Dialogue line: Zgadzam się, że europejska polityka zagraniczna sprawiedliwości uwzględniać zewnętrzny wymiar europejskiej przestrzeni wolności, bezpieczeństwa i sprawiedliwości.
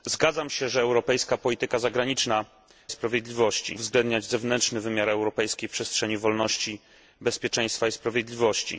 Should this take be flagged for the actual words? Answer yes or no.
no